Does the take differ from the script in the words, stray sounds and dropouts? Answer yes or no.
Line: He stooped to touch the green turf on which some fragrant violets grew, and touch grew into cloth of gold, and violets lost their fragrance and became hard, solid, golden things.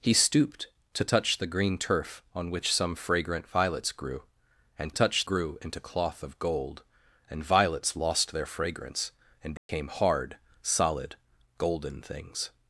yes